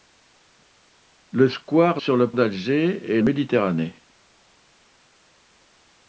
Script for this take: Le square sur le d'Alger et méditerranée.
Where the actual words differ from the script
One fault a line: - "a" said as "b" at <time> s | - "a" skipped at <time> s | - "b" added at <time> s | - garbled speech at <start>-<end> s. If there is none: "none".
none